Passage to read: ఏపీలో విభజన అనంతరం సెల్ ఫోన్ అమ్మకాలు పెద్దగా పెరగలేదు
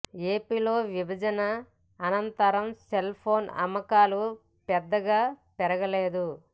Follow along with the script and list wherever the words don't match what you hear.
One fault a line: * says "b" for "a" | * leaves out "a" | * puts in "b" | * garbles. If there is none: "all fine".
all fine